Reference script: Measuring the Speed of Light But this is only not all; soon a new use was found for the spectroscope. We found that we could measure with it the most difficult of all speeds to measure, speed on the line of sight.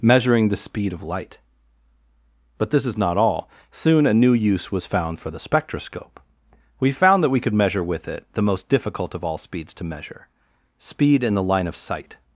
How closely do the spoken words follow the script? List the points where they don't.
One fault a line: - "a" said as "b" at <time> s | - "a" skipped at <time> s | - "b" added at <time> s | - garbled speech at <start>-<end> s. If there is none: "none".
- "only" skipped at 3.0 s
- "on" said as "in" at 11.2 s